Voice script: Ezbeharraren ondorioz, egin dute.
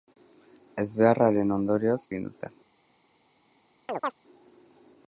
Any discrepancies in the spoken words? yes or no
no